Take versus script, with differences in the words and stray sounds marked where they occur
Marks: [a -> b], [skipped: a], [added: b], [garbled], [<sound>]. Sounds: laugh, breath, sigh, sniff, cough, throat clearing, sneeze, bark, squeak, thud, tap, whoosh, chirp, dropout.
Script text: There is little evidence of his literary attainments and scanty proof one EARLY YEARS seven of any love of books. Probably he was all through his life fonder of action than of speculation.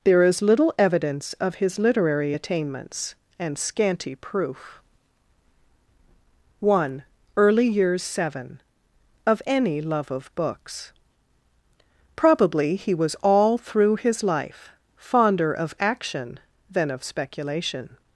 There is little evidence of his literary attainments and scanty proof one EARLY YEARS seven of any love of books. Probably he was all through his life fonder of action than of speculation.